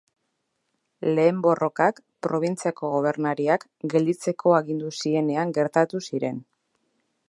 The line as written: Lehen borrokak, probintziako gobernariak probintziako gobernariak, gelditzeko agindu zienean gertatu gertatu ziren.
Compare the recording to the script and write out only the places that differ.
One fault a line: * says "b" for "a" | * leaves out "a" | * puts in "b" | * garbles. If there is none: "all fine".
* leaves out "probintziako gobernariak"
* leaves out "gertatu"